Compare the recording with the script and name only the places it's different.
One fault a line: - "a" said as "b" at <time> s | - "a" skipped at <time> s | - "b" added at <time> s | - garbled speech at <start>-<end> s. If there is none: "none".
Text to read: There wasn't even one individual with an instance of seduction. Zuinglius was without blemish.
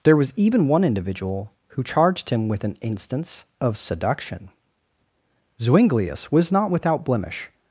- "wasn't" said as "was" at 0.1 s
- "who charged him" added at 1.7 s
- "not" added at 6.5 s